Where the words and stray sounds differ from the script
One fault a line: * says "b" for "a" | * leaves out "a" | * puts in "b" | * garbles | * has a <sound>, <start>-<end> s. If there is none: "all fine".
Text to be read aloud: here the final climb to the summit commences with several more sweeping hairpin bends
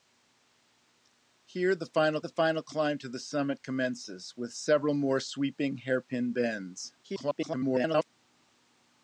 * puts in "the final"
* garbles